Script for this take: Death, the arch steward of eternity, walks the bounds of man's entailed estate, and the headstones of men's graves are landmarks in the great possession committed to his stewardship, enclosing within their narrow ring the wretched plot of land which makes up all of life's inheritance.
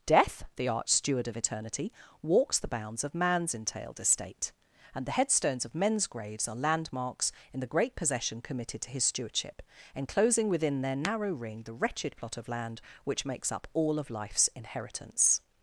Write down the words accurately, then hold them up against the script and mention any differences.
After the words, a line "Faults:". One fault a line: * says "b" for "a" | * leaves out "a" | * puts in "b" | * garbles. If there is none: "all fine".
Death, the arch steward of eternity, walks the bounds of man's entailed estate, and the headstones of men's graves are landmarks in the great possession committed to his stewardship, enclosing within their narrow ring the wretched plot of land which makes up all of life's inheritance.
Faults:
all fine